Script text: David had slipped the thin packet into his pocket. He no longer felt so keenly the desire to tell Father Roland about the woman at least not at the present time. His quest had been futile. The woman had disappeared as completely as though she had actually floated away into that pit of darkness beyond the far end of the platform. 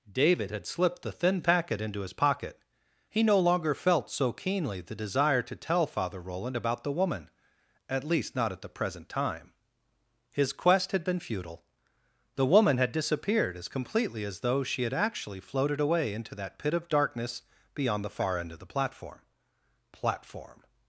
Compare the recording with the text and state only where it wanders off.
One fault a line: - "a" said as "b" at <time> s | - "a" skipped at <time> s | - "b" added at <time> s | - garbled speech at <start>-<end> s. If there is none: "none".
- "platform" added at 19.9 s